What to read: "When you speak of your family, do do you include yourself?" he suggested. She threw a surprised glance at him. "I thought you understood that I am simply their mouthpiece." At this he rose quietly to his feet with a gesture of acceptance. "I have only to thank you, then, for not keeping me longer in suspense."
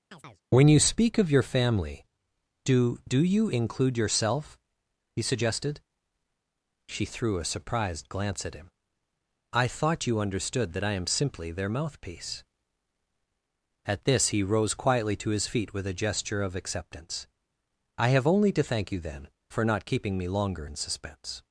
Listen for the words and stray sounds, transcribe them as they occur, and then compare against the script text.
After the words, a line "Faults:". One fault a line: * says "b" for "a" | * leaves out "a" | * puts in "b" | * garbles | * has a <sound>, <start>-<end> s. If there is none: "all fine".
"When you speak of your family, do do you include yourself?" he suggested. She threw a surprised glance at him. "I thought you understood that I am simply their mouthpiece." At this he rose quietly to his feet with a gesture of acceptance. "I have only to thank you, then, for not keeping me longer in suspense."
Faults:
* has a chirp, 0.1-0.4 s